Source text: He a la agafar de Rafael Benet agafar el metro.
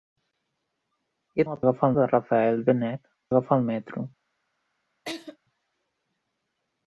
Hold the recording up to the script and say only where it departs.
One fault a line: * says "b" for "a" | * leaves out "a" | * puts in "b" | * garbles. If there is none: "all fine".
all fine